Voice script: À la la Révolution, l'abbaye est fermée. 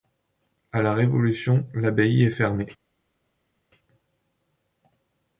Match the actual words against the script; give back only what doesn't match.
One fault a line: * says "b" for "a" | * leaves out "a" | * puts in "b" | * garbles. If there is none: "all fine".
* leaves out "la"